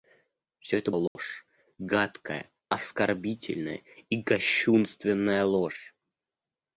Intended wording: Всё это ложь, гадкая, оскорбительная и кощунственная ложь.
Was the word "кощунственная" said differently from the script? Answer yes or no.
no